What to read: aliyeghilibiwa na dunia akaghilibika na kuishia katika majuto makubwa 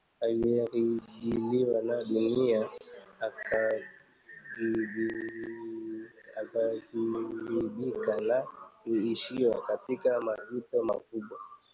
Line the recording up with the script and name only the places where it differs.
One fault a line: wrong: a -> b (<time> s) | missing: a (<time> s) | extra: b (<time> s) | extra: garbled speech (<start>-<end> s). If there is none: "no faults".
no faults